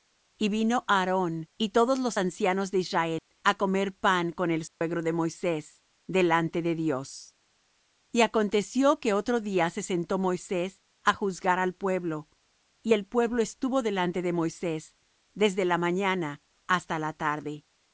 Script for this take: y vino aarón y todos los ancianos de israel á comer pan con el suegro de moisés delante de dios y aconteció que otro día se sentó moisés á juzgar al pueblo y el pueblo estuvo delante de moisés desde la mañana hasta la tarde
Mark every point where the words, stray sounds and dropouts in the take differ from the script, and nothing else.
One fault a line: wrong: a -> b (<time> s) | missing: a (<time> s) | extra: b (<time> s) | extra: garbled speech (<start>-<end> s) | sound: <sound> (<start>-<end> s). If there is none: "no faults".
sound: dropout (3.2-3.3 s)
sound: dropout (4.7-4.8 s)